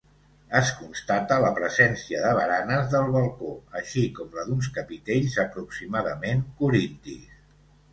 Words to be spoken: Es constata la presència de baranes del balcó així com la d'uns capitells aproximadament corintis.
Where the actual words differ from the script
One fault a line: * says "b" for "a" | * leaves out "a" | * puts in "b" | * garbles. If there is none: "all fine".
all fine